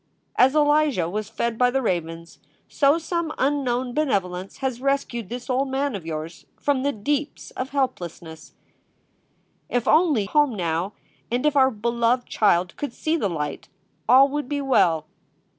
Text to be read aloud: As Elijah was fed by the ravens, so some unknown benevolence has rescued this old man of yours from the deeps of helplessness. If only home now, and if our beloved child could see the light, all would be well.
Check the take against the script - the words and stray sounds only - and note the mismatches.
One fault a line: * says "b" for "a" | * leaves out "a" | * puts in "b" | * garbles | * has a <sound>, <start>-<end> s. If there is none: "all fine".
all fine